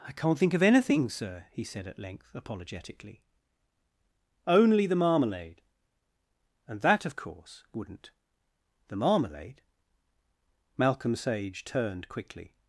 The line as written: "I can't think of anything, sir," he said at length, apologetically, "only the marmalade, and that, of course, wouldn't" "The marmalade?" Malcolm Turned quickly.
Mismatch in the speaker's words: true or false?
true